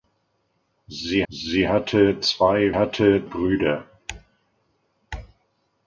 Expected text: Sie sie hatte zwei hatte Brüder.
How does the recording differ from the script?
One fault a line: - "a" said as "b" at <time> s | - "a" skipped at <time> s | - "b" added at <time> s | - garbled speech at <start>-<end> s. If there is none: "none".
none